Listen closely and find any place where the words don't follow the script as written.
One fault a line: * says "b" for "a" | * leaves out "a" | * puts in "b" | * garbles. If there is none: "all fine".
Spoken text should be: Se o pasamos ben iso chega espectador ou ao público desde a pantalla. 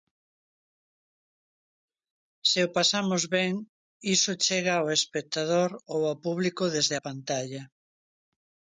* puts in "ao"